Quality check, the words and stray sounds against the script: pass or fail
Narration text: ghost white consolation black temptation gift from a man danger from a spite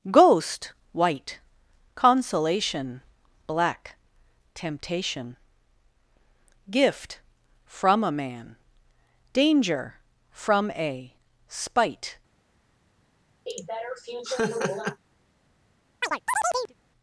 fail